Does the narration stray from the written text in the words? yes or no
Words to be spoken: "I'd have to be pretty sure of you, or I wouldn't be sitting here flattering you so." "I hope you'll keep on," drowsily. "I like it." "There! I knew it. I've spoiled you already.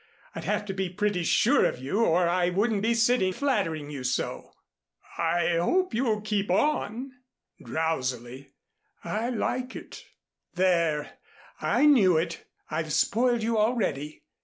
yes